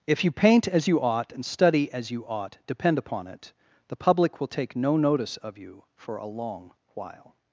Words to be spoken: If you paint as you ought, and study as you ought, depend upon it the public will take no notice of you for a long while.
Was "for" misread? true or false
false